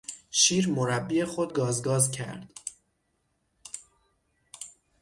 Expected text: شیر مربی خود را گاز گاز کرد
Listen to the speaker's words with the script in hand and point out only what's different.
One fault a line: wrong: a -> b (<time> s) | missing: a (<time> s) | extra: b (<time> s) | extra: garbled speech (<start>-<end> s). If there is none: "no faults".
missing: را (1.5 s)